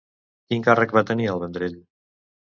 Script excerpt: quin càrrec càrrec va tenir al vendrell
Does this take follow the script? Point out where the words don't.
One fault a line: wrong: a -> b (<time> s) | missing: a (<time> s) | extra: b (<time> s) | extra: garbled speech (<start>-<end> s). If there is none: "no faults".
missing: càrrec (0.9 s)